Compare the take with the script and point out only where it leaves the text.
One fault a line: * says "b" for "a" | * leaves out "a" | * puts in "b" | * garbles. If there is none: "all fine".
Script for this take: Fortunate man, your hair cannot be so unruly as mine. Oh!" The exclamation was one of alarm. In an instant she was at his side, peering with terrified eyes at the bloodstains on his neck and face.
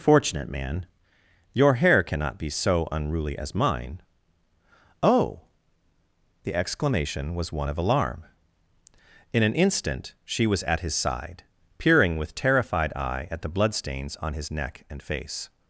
* says "eye" for "eyes"